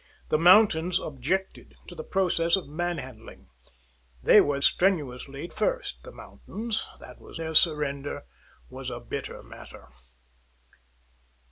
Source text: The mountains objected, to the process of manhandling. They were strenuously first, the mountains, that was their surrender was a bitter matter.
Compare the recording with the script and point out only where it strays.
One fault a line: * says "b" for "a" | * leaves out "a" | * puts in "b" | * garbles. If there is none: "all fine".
all fine